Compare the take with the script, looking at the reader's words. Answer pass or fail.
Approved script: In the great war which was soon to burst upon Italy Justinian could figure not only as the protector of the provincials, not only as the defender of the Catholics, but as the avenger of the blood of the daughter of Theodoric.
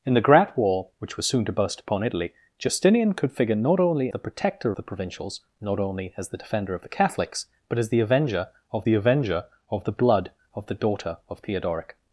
fail